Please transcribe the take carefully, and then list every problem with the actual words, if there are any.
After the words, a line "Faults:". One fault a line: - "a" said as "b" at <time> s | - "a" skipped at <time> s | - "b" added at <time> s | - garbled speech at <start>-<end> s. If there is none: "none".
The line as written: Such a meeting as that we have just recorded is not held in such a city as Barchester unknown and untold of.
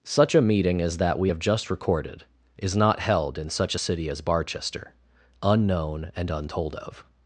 Such a meeting as that we have just recorded is not held in such a city as Barchester unknown and untold of.
Faults:
none